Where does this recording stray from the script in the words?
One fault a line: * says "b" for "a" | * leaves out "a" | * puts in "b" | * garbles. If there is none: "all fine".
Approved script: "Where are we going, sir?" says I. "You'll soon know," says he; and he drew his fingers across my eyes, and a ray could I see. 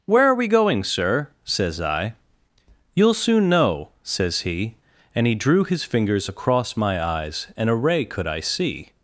all fine